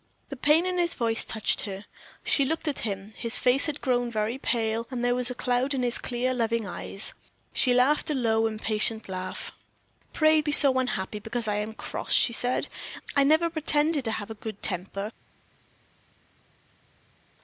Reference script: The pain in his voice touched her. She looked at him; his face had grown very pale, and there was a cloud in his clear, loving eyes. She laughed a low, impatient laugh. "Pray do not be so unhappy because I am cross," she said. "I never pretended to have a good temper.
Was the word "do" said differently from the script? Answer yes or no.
yes